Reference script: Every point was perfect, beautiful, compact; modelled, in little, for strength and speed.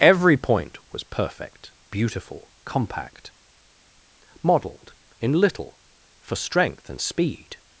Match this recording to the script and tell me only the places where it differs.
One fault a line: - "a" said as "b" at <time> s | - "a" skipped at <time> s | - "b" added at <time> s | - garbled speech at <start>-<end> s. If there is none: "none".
none